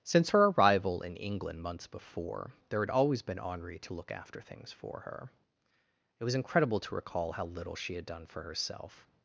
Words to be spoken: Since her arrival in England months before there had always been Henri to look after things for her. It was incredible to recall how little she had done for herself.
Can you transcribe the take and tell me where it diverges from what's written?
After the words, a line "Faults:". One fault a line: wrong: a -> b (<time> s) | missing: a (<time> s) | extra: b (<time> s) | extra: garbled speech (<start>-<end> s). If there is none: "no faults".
Since her arrival in England months before there had always been Henri to look after things for her. It was incredible to recall how little she had done for herself.
Faults:
no faults